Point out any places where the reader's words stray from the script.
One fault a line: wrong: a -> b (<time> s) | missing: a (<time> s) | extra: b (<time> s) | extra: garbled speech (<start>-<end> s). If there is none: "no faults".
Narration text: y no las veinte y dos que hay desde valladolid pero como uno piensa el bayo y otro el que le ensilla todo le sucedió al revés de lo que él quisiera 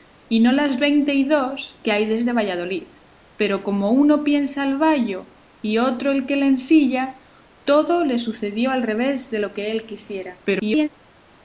extra: garbled speech (10.4-10.9 s)